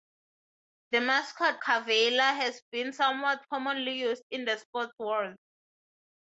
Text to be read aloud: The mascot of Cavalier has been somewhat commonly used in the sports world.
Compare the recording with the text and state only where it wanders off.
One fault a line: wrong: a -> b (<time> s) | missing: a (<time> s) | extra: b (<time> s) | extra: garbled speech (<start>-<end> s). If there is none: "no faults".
missing: of (1.6 s)